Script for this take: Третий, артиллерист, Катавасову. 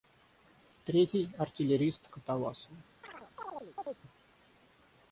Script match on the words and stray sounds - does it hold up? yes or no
no